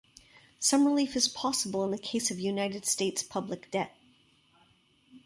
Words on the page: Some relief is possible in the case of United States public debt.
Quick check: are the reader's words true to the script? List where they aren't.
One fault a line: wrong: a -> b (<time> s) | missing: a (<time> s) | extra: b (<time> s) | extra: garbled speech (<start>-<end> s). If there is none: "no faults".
no faults